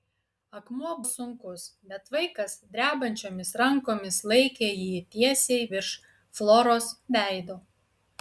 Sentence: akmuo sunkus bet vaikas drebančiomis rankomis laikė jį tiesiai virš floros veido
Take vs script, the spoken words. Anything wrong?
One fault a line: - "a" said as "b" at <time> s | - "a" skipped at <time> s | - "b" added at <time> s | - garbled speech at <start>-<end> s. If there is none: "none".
none